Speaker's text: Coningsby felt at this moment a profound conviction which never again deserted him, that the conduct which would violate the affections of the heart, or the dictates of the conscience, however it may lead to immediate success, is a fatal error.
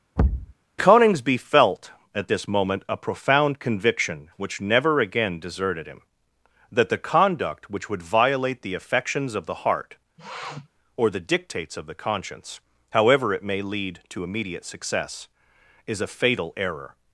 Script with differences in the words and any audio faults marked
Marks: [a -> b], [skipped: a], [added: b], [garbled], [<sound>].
[thud] Coningsby felt at this moment a profound conviction which never again deserted him, that the conduct which would violate the affections of the heart, [sniff] or the dictates of the conscience, however it may lead to immediate success, is a fatal error.